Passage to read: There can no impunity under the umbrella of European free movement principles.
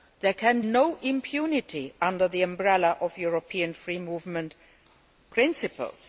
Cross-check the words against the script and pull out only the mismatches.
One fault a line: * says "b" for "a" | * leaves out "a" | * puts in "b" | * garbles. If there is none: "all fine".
all fine